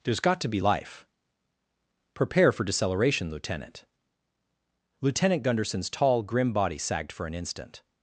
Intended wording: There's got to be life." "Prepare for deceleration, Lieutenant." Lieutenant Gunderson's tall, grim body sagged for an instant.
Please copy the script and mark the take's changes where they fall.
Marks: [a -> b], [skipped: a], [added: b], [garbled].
There's got to be life." "Prepare for deceleration, Lieutenant." Lieutenant Gunderson's tall, grim body sagged for an instant.